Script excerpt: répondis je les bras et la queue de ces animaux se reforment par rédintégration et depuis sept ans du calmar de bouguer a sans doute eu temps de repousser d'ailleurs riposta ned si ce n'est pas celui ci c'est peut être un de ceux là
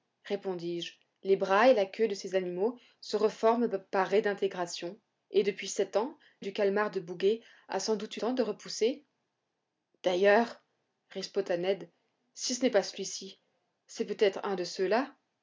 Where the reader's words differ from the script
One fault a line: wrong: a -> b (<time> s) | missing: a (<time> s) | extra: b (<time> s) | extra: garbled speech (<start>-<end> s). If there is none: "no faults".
no faults